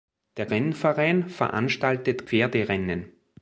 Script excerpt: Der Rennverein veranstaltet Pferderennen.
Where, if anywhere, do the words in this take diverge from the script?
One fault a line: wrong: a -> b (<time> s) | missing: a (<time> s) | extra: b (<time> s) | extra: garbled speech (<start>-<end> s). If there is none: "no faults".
no faults